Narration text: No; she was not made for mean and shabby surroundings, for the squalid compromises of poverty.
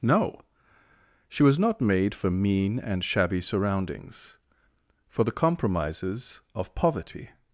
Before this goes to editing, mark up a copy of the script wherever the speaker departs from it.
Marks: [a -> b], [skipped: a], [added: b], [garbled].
No; she was not made for mean and shabby surroundings, for the [skipped: squalid] compromises of poverty.